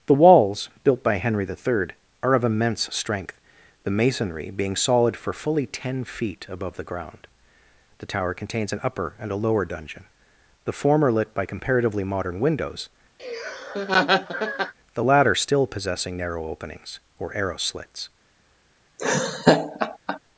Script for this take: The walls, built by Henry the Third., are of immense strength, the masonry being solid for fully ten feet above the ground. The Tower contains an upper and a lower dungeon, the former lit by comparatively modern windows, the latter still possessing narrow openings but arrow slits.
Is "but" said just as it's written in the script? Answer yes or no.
no